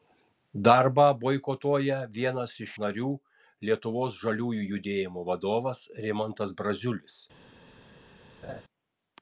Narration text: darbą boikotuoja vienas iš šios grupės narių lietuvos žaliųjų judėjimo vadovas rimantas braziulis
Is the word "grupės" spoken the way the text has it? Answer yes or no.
no